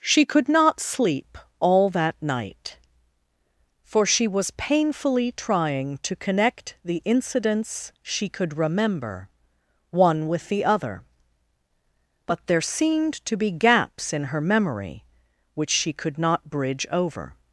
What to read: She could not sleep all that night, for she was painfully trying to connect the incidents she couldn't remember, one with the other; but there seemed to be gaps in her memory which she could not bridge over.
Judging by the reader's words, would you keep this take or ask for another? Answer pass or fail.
fail